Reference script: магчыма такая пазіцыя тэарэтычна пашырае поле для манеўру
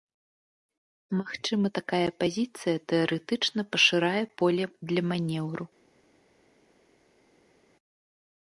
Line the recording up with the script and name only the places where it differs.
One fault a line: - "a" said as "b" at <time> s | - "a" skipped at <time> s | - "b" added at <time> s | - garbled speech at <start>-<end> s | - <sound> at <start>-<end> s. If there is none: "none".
none